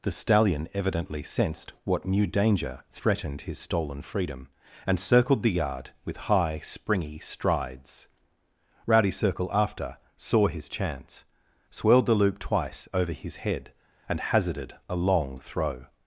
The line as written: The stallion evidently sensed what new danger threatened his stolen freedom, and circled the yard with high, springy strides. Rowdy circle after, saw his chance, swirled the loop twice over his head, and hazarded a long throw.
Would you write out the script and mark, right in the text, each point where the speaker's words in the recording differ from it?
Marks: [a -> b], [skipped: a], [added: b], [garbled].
The stallion evidently sensed what new danger threatened his stolen freedom, and circled the yard with high, springy strides. Rowdy circle after, saw his chance, swirled the loop twice over his head, and hazarded a long throw.